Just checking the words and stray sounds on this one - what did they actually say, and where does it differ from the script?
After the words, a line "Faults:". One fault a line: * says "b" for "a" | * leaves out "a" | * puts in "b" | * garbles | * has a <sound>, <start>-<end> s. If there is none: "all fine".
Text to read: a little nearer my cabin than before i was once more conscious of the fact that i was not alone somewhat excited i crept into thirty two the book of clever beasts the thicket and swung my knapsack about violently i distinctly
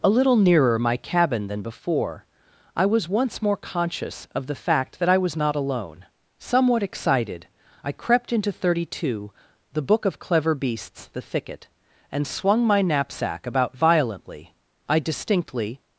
a little nearer my cabin than before i was once more conscious of the fact that i was not alone somewhat excited i crept into thirty two the book of clever beasts the thicket and swung my knapsack about violently i distinctly
Faults:
all fine